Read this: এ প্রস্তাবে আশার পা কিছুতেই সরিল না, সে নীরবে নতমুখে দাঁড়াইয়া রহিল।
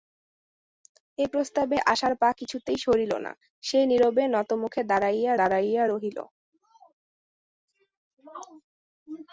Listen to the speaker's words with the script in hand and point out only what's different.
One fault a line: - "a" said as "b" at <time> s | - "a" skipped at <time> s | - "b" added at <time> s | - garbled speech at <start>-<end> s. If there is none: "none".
- "দাঁড়াইয়া" added at 5.4 s